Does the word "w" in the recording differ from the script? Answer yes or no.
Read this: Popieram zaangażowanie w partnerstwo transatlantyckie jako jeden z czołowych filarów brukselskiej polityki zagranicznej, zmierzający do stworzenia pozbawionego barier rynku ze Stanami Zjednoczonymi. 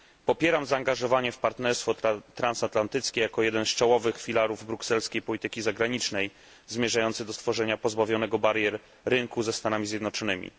no